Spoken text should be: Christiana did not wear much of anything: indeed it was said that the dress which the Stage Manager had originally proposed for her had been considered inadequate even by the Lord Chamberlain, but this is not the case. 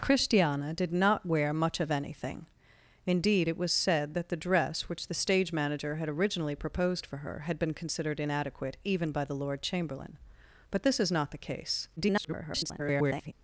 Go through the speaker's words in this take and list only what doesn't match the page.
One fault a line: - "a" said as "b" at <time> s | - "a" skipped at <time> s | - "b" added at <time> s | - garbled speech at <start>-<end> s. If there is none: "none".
- garbled speech at 12.0-13.3 s